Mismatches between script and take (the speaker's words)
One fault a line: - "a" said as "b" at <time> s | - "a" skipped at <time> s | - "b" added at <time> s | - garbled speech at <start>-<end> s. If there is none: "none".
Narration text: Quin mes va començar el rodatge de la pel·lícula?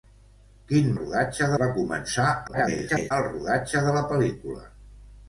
- "mes" said as "rodatge" at 1.0 s
- garbled speech at 2.5-3.1 s